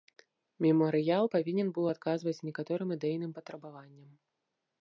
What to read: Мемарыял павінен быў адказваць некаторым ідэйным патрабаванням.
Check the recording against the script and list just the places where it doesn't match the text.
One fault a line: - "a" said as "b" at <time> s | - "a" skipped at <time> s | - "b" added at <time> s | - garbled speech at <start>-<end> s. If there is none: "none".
none